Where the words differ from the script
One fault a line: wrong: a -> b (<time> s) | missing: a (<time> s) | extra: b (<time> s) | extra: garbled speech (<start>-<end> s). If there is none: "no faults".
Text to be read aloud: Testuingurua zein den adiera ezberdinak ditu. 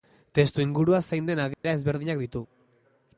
no faults